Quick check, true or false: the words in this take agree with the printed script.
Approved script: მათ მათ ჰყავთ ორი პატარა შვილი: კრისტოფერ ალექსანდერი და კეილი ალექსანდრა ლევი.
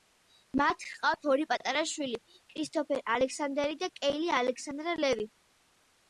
false